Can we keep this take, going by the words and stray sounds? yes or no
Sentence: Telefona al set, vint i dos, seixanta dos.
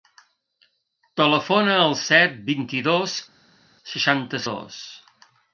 yes